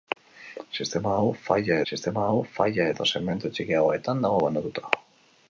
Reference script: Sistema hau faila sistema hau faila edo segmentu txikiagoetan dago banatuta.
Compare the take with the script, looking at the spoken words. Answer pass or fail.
pass